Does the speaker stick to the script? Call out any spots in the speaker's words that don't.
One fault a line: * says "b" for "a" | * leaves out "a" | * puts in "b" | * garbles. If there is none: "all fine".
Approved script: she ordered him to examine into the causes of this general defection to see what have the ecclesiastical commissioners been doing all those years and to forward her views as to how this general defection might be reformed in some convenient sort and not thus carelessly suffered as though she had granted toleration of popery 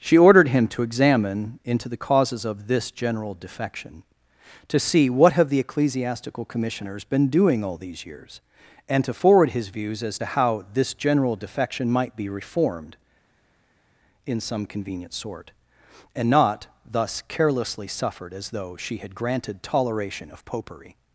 * says "these" for "those"
* says "his" for "her"